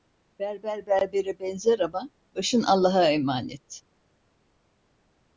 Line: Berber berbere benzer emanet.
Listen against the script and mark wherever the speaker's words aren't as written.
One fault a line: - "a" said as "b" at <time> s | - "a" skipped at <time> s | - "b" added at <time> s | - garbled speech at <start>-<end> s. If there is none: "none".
- "ama başın Allah'a" added at 1.8 s